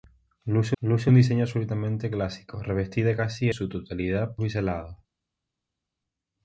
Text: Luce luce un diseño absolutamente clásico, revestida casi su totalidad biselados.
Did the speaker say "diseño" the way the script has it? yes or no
yes